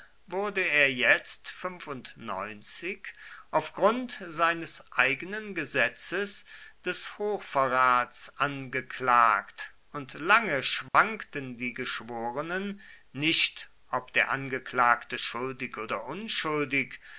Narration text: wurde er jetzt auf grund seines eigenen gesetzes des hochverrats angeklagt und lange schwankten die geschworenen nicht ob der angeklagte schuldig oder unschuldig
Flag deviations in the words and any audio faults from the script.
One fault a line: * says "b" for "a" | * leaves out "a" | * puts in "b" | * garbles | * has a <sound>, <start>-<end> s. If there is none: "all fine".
* has a dropout, 10.9-10.9 s